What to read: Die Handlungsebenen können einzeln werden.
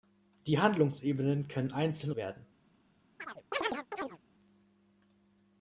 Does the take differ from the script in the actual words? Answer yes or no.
no